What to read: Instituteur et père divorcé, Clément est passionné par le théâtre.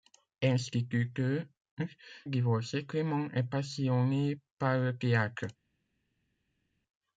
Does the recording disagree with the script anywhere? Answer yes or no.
yes